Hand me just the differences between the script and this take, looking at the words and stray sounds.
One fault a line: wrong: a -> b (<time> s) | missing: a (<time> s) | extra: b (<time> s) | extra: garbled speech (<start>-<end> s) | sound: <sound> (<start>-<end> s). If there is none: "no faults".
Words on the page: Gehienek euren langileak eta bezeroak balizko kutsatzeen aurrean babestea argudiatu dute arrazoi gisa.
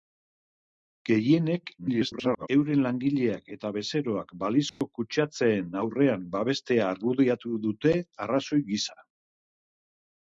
extra: garbled speech (1.8-2.5 s)
sound: dropout (4.7-4.8 s)